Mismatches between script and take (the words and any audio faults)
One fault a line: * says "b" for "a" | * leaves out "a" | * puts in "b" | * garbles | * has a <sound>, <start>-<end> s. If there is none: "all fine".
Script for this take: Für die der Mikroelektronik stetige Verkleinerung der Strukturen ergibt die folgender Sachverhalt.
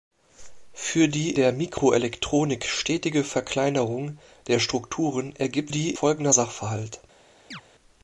* has a chirp, 7.5-7.6 s